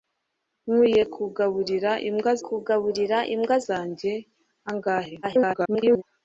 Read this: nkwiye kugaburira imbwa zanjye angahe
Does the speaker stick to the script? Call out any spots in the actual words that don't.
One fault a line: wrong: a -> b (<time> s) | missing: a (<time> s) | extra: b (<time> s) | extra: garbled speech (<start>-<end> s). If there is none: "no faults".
extra: kugaburira imbwa (2.4 s)
extra: garbled speech (5.2-6.0 s)